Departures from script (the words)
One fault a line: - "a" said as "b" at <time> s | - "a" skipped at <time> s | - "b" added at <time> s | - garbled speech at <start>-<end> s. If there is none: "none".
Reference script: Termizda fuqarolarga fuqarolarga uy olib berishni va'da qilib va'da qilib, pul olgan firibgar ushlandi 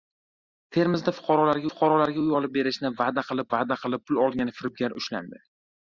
none